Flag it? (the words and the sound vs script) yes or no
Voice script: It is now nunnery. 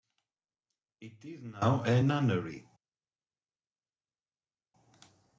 yes